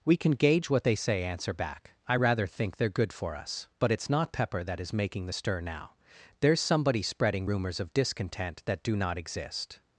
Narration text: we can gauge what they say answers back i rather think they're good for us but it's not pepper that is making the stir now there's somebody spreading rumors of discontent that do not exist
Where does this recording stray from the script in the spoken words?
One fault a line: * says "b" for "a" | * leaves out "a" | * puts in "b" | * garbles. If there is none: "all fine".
* says "answer" for "answers"